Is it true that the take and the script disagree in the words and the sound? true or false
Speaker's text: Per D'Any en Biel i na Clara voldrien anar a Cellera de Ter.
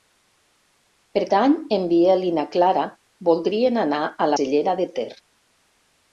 false